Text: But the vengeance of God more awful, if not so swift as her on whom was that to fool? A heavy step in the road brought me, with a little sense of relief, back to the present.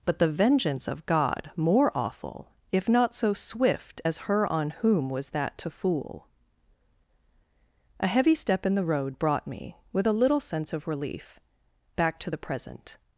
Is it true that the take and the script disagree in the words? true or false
false